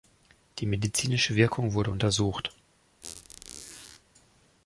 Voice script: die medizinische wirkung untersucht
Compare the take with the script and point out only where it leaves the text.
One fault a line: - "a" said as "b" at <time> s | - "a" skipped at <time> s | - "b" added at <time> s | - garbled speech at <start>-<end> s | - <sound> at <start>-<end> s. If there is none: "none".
- "wurde" added at 1.7 s
- squeak at 3.0-4.0 s